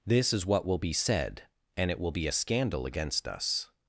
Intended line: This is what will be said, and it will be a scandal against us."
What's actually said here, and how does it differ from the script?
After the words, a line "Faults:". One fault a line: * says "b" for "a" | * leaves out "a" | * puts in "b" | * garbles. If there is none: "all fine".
This is what will be said, and it will be a scandal against us."
Faults:
all fine